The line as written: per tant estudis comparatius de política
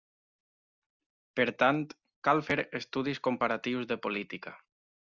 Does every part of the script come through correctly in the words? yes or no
no